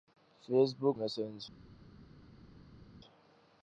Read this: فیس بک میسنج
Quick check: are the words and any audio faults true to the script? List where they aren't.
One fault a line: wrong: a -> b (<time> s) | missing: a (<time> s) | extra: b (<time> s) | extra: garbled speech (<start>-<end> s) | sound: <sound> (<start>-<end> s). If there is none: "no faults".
no faults